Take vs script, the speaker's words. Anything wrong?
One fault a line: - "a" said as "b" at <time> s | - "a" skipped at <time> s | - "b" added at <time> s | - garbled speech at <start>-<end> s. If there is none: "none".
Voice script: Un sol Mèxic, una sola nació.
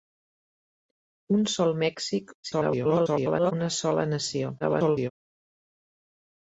- garbled speech at 2.4-3.5 s
- garbled speech at 4.6-5.1 s